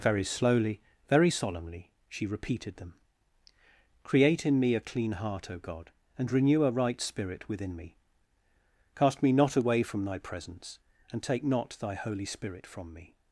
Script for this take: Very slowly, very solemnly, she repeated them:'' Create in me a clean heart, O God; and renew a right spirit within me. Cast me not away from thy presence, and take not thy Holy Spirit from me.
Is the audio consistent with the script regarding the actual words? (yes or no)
yes